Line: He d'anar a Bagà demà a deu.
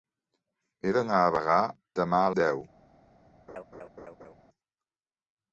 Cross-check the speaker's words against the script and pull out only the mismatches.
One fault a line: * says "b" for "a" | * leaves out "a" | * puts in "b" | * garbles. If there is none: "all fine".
all fine